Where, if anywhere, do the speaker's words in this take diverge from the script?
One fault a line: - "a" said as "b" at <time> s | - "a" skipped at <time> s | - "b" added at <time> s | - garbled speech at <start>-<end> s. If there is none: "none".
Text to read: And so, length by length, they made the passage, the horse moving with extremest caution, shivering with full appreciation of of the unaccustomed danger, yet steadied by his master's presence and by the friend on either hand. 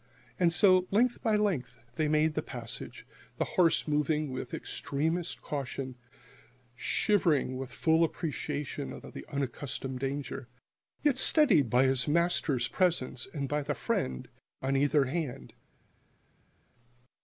none